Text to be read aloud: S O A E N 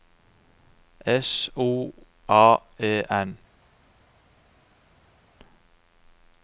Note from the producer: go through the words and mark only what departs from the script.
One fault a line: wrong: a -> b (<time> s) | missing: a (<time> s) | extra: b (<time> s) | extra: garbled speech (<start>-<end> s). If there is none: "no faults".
no faults